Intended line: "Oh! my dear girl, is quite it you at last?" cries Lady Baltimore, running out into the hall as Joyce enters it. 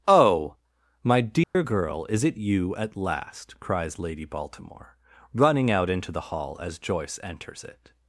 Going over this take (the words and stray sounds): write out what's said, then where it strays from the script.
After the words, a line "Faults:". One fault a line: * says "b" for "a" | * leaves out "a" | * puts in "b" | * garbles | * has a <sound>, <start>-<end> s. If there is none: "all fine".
"Oh! my dear girl, is it you at last?" cries Lady Baltimore, running out into the hall as Joyce enters it.
Faults:
* has a dropout, 1.4-1.6 s
* leaves out "quite"